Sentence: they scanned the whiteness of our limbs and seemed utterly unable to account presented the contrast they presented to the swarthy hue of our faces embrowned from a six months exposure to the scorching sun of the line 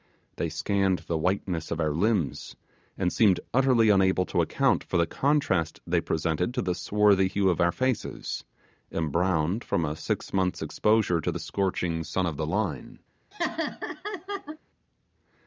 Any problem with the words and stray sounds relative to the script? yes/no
yes